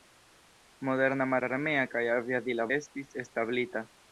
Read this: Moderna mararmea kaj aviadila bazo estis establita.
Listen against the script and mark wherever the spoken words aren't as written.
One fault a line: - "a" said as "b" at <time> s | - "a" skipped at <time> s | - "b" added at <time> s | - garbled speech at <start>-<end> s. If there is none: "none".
- "bazo" skipped at 2.6 s